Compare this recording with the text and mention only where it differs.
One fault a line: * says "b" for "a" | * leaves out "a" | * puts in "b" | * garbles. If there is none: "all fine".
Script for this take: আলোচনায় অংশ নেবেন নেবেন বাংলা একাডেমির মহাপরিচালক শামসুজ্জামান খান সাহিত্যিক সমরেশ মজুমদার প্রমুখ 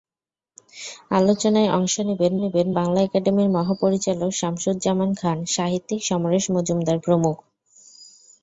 all fine